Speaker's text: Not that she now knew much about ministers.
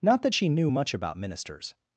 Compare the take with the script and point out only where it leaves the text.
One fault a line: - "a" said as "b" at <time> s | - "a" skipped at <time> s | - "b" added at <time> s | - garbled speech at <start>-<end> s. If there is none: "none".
- "now" skipped at 0.5 s